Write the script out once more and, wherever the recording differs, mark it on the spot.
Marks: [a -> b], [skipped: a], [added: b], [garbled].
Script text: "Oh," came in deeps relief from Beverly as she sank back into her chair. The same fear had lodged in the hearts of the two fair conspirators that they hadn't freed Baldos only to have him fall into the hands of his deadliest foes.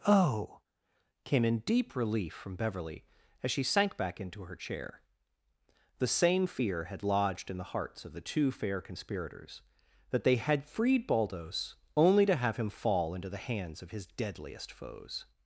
"Oh," came in [deeps -> deep] relief from Beverly as she sank back into her chair. The same fear had lodged in the hearts of the two fair conspirators that they [hadn't -> had] freed Baldos only to have him fall into the hands of his deadliest foes.